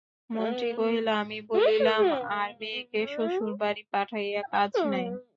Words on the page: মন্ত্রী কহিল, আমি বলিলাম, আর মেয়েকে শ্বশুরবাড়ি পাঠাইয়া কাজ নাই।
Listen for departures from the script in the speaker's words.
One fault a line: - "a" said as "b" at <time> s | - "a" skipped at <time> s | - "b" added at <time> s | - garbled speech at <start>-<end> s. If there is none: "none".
none